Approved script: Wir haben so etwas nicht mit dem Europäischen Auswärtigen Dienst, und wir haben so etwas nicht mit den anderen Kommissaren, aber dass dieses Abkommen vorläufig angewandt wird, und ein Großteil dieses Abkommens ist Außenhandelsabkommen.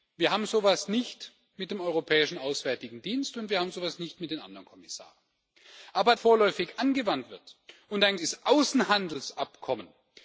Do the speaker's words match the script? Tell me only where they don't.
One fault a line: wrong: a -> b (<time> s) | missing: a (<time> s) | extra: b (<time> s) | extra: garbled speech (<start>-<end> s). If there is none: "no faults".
missing: dass dieses Abkommen (6.2 s)
missing: Großteil dieses Abkommens (8.2 s)